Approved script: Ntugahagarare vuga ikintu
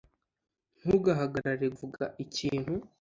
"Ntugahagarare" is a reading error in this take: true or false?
false